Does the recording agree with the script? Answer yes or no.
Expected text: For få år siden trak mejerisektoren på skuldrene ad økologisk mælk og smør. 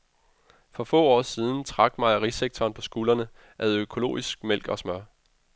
yes